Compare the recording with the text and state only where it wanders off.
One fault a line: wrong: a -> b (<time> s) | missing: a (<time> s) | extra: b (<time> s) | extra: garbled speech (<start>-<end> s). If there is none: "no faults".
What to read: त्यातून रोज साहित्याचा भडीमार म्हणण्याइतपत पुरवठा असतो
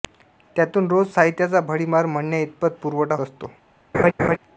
no faults